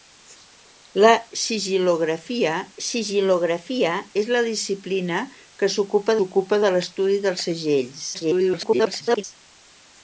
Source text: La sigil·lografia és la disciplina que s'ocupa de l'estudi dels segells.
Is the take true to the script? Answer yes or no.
no